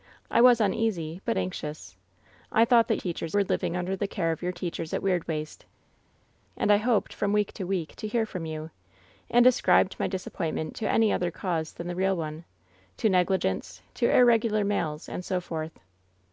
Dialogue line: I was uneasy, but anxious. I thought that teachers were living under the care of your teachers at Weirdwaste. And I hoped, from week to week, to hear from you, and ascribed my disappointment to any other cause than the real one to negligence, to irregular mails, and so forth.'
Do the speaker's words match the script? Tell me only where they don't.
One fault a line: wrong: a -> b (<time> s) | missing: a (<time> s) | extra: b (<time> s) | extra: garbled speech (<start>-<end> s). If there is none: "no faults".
no faults